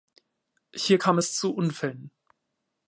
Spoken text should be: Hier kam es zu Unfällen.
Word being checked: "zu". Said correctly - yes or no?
yes